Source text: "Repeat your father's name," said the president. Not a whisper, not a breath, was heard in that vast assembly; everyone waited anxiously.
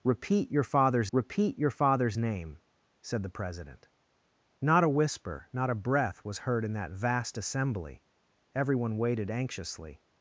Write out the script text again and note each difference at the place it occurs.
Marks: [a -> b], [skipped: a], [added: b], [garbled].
"Repeat your father's [added: repeat your father's] name," said the president. Not a whisper, not a breath, was heard in that vast assembly; everyone waited anxiously.